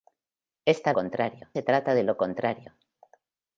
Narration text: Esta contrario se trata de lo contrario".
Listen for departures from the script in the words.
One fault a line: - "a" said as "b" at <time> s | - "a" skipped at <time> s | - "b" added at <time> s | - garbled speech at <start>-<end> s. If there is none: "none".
none